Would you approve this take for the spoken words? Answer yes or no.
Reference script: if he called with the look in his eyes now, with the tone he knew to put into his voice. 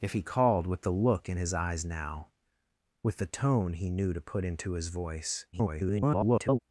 no